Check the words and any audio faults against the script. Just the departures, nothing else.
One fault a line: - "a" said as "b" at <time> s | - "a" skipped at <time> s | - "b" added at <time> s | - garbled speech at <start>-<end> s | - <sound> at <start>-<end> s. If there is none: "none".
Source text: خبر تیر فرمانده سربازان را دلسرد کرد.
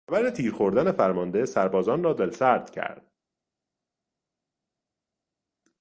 - "خوردن" added at 0.5 s